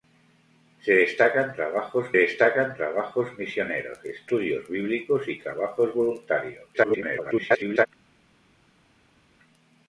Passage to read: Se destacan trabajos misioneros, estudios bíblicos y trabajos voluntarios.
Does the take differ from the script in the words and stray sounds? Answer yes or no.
yes